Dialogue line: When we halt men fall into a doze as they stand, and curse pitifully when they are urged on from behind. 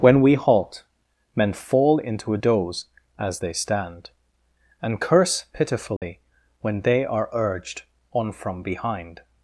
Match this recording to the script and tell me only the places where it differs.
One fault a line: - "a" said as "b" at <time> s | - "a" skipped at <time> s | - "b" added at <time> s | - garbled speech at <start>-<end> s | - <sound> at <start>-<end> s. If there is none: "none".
- dropout at 6.0-6.0 s